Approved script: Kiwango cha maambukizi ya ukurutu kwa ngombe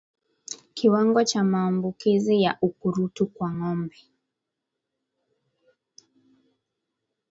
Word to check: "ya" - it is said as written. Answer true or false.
true